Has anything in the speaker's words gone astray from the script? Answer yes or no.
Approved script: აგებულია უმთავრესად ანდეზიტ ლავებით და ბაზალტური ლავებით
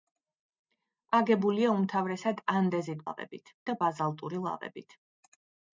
no